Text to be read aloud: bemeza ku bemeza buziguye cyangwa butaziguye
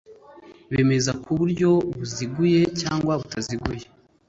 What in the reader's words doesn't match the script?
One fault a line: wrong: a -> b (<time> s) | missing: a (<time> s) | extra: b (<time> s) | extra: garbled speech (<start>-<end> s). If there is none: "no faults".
wrong: bemeza -> buryo (1.4 s)